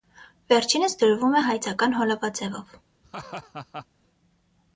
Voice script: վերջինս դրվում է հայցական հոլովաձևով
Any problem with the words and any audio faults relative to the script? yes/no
yes